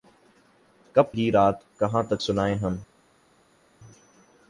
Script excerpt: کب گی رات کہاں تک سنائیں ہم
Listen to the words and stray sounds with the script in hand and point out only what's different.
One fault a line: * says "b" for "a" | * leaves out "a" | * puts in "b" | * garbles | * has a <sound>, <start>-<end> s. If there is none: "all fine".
all fine